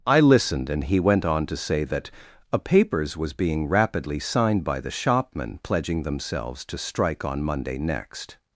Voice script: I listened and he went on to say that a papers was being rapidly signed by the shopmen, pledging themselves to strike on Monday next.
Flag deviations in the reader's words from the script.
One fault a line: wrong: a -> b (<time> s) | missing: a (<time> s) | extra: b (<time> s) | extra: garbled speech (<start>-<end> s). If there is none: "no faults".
no faults